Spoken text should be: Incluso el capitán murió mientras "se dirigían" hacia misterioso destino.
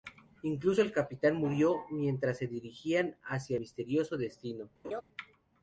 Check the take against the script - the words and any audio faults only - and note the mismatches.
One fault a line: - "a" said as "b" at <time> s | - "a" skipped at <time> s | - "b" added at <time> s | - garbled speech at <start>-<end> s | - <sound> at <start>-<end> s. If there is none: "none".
- laugh at 4.8-5.0 s